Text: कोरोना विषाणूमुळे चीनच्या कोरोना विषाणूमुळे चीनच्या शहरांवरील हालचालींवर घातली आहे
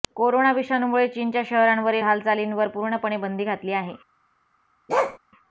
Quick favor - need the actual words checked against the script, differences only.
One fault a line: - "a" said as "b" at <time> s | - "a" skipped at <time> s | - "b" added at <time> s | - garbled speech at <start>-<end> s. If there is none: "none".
- "कोरोना विषाणूमुळे चीनच्या शहरांवरील हालचालींवर" said as "शहरांवरील हालचालींवर पूर्णपणे बंदी" at 1.4 s